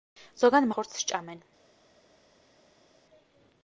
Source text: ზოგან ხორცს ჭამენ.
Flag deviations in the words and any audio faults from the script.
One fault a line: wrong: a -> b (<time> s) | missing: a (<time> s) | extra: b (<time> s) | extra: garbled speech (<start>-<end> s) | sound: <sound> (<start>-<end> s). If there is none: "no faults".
no faults